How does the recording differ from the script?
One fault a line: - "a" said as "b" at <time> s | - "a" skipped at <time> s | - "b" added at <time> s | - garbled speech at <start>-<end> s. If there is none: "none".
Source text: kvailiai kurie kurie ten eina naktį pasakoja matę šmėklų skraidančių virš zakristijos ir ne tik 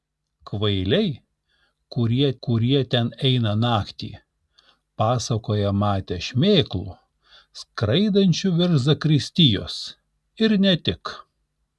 none